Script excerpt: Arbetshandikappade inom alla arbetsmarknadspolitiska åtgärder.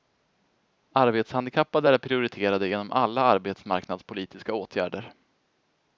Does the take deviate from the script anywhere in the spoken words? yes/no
yes